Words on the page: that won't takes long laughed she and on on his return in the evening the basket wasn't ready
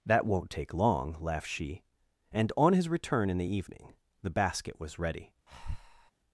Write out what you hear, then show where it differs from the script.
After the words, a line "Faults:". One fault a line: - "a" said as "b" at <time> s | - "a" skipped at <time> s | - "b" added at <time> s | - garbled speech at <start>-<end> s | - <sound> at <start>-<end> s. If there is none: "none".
that won't take long laughed she and on his return in the evening the basket was ready
Faults:
- "takes" said as "take" at 0.5 s
- "on" skipped at 2.7 s
- "wasn't" said as "was" at 4.8 s
- breath at 5.5-6.1 s